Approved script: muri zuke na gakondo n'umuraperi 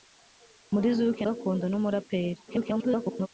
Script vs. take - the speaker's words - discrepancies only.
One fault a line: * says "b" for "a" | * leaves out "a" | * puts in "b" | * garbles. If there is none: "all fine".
* leaves out "na"
* garbles